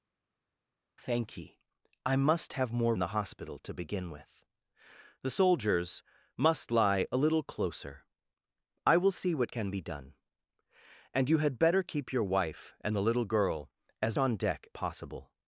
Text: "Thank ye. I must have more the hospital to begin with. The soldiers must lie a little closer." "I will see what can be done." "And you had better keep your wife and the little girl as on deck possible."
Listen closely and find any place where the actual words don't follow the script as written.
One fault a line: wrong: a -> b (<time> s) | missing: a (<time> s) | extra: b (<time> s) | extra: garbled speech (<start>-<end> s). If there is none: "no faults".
no faults